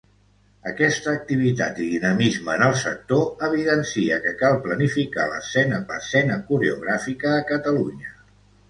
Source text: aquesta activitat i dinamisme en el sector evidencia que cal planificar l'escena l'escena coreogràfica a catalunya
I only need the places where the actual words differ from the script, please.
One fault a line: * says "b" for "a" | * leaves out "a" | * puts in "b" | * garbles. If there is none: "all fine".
all fine